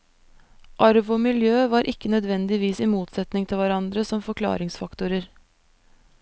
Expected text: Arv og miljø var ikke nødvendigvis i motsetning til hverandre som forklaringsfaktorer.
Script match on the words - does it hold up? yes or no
yes